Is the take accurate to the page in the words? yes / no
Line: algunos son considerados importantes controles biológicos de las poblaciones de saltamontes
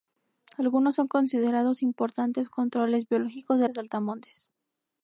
no